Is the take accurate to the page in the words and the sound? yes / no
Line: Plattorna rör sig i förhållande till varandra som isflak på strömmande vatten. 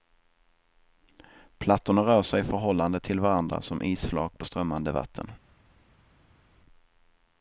yes